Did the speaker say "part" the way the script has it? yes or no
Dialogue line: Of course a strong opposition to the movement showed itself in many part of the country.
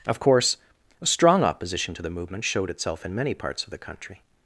no